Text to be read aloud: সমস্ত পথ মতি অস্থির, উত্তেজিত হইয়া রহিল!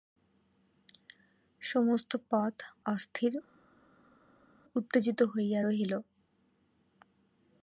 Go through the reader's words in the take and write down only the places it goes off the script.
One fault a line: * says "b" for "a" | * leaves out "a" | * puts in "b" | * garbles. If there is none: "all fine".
* leaves out "মতি"